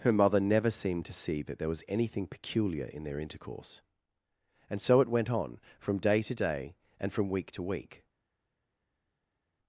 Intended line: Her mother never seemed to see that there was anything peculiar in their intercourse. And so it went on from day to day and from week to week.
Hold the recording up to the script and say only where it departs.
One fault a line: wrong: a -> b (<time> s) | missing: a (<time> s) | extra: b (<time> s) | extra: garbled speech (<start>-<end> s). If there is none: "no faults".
no faults